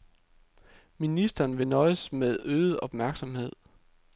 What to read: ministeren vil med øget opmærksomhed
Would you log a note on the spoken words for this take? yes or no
yes